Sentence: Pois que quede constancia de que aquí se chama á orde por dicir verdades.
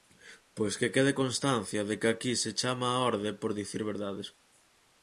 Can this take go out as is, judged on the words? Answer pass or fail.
pass